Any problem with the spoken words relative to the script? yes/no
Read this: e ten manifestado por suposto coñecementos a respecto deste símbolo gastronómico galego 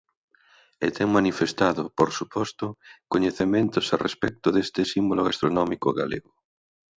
no